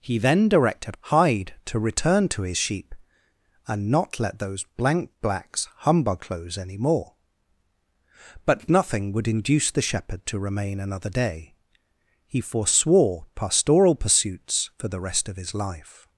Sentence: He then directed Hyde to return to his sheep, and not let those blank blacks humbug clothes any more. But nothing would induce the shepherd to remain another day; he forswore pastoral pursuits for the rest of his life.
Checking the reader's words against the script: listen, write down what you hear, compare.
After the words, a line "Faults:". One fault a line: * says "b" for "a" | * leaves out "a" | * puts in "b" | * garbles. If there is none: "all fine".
He then directed Hyde to return to his sheep, and not let those blank blacks humbug clothes any more. But nothing would induce the shepherd to remain another day; he forswore pastoral pursuits for the rest of his life.
Faults:
all fine